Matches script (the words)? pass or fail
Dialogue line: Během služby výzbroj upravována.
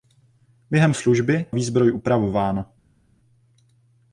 pass